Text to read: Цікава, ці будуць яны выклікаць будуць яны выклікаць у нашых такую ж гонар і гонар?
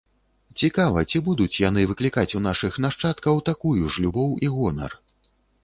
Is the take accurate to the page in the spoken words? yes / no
no